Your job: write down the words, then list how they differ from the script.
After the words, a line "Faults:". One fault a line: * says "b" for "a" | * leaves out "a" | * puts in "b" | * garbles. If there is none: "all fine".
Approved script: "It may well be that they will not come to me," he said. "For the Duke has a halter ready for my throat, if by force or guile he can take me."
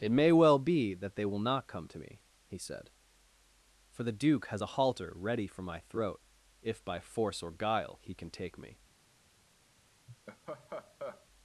"It may well be that they will not come to me," he said. "For the Duke has a halter ready for my throat, if by force or guile he can take me."
Faults:
all fine